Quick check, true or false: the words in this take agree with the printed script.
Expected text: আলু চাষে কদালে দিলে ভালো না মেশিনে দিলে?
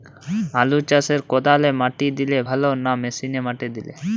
false